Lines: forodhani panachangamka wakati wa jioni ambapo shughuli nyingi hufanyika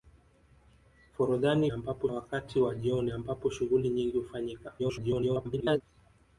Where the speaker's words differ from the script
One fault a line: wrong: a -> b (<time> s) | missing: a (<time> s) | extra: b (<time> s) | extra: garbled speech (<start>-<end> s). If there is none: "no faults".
wrong: panachangamka -> ambapo (1.7 s)
extra: garbled speech (4.8-5.8 s)